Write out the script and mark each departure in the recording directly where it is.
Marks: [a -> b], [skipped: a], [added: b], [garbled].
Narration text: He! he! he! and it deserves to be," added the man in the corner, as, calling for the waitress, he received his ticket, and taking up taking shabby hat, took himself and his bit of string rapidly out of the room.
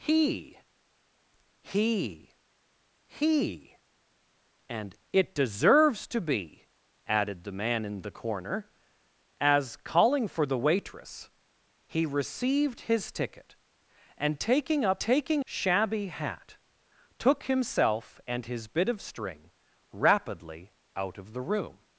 He! he! he! and it deserves to be," added the man in the corner, as, calling for the waitress, he received his ticket, and taking up taking shabby hat, took himself and his bit of string rapidly out of the room.